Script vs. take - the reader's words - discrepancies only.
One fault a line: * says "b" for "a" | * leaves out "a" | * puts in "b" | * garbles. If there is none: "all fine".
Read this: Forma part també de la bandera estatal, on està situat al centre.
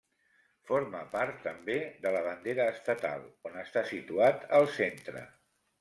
all fine